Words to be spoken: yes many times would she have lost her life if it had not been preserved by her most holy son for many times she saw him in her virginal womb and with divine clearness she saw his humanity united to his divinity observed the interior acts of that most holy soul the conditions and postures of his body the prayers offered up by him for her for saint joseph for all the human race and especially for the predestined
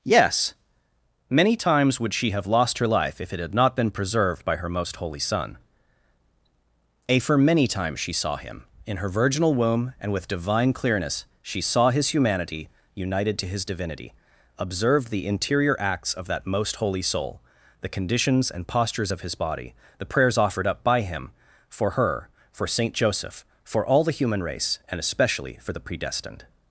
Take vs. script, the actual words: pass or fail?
fail